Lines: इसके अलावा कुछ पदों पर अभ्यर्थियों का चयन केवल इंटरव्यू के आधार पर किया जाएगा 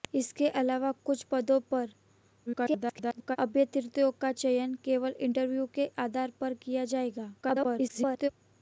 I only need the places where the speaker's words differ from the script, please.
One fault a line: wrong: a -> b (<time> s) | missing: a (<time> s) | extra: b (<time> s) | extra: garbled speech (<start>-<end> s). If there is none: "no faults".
extra: garbled speech (2.5-3.4 s)
extra: garbled speech (7.4-8.3 s)